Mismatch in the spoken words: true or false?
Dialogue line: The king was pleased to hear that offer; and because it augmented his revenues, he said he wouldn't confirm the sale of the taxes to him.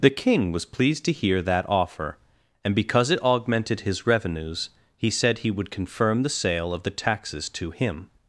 true